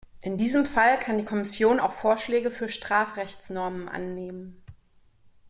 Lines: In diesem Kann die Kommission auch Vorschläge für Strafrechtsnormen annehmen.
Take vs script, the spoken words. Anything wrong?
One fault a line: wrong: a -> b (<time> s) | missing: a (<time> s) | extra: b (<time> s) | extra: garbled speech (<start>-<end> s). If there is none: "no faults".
extra: Fall (0.6 s)